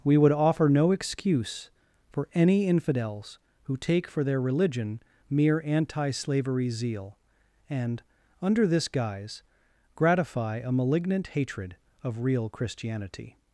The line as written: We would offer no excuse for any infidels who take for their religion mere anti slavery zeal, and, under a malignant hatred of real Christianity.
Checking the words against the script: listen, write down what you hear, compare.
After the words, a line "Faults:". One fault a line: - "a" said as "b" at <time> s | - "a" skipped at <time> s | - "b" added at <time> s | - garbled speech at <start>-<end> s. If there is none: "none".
We would offer no excuse for any infidels who take for their religion mere anti slavery zeal, and, under this guise, gratify a malignant hatred of real Christianity.
Faults:
- "this guise gratify" added at 8.7 s